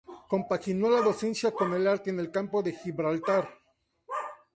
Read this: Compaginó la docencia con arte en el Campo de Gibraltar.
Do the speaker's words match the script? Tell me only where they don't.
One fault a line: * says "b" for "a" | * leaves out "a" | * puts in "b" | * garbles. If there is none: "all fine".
* puts in "el"